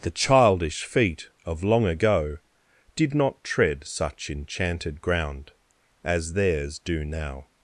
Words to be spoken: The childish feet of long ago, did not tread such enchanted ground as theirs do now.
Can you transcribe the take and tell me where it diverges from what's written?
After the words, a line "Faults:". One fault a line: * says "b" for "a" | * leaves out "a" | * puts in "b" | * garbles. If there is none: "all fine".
The childish feet of long ago, did not tread such enchanted ground as theirs do now.
Faults:
all fine